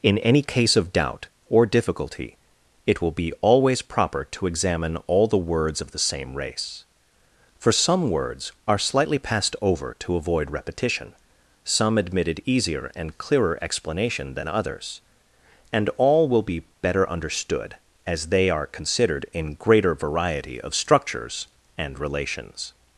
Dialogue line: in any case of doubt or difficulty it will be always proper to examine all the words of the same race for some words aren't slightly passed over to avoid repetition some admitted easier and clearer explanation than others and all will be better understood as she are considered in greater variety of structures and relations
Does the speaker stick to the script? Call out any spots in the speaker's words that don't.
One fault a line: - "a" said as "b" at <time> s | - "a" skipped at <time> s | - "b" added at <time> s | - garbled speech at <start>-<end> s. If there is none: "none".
- "aren't" said as "are" at 8.7 s
- "she" said as "they" at 18.3 s